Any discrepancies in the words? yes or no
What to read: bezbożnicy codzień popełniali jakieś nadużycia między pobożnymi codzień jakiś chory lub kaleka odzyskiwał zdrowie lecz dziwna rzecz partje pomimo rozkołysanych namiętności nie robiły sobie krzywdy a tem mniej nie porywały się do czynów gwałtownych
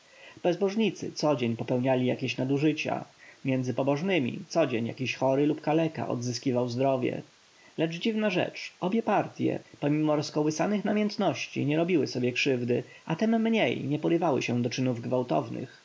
yes